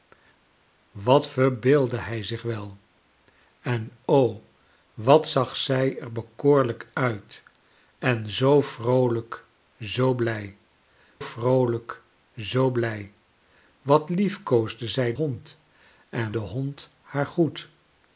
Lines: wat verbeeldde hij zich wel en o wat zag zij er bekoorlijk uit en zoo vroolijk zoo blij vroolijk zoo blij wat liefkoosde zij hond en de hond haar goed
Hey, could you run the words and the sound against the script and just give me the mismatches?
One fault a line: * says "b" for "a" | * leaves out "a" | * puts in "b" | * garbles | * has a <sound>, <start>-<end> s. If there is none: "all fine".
all fine